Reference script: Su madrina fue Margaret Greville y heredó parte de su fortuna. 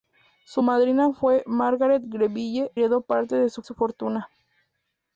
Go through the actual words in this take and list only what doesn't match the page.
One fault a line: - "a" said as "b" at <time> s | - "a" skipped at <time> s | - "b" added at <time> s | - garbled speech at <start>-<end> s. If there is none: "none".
- "y" skipped at 2.7 s
- "su" added at 3.6 s